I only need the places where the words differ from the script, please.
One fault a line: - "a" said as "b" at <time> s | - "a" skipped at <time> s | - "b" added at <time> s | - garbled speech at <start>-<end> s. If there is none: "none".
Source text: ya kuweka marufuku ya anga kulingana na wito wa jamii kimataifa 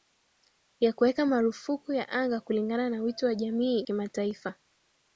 none